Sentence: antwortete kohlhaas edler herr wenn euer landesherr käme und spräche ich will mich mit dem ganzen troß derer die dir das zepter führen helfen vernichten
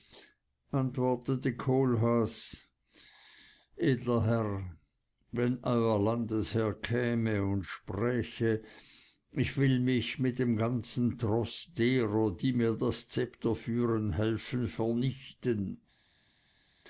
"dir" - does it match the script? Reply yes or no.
no